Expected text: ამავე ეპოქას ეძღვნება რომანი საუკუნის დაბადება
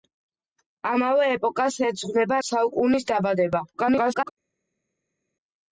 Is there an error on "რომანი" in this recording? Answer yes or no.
yes